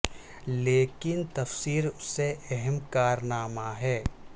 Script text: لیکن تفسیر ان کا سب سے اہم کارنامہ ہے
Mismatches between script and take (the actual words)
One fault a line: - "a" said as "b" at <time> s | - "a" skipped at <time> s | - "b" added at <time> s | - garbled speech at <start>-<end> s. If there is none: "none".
- "ان کا سب" skipped at 1.9 s